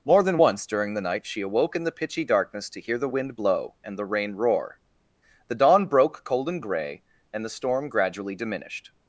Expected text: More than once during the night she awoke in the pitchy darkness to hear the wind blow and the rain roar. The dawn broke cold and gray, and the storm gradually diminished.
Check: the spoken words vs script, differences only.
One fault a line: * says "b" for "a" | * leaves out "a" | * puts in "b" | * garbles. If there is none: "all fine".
all fine